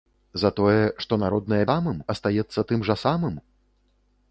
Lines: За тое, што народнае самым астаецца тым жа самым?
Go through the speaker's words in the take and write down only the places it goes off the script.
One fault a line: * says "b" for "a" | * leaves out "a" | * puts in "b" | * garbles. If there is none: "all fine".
all fine